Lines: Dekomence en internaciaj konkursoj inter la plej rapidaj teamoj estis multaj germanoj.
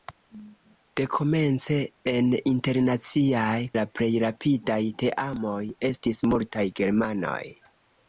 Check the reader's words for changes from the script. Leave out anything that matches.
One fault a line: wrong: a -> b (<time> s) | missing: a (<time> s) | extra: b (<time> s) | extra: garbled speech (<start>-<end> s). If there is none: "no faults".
missing: konkursoj inter (3.6 s)